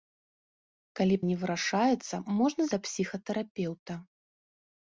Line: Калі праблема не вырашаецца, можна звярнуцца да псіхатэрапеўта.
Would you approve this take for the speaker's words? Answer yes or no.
no